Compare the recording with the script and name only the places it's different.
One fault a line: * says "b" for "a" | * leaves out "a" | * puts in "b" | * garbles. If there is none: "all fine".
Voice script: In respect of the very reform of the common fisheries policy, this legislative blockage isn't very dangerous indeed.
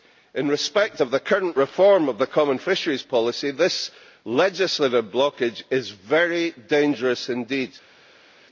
* says "current" for "very"
* says "is" for "isn't"